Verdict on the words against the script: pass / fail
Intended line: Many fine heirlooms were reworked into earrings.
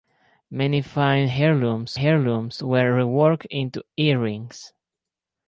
fail